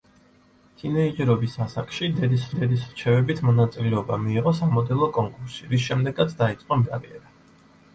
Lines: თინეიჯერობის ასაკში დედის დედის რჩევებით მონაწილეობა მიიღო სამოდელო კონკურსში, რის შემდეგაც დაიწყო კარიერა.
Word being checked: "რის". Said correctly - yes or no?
yes